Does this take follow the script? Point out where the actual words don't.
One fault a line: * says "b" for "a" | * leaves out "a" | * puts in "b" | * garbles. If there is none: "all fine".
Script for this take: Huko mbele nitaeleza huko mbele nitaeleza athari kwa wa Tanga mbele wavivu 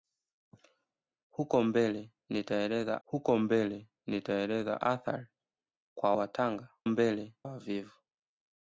all fine